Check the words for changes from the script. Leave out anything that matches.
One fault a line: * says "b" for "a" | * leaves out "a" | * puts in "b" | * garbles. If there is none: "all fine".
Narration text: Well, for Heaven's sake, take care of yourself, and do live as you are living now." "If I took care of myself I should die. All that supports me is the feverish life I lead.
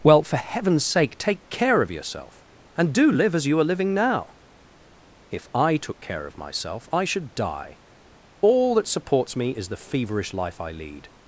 all fine